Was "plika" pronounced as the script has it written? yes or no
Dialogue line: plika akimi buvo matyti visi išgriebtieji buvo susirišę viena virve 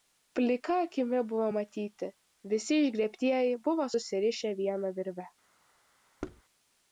yes